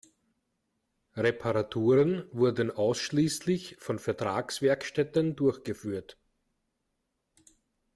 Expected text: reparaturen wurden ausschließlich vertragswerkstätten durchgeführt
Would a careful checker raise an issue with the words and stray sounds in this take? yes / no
yes